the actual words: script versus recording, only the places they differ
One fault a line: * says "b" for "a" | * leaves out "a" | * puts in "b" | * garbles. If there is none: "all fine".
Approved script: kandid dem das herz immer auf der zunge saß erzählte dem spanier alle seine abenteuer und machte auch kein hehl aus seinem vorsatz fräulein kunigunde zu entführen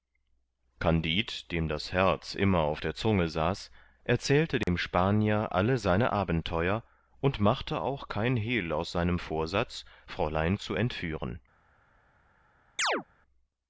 * leaves out "kunigunde"